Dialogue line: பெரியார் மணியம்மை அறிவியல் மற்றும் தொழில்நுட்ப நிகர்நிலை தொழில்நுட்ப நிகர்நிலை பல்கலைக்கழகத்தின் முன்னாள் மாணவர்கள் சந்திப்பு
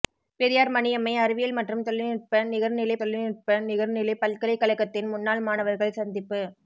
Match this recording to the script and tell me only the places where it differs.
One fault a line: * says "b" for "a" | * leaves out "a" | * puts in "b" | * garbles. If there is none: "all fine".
all fine